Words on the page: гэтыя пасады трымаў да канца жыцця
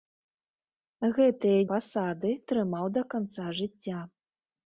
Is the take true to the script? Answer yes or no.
yes